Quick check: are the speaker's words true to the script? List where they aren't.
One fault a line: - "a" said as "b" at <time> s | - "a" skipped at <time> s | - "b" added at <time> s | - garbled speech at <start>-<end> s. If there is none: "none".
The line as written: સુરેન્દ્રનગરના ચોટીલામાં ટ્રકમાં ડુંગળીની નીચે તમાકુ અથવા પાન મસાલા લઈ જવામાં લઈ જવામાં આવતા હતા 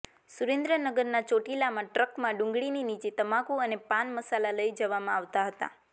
- "અથવા" said as "અને" at 3.6 s
- "લઈ જવામાં" skipped at 5.2 s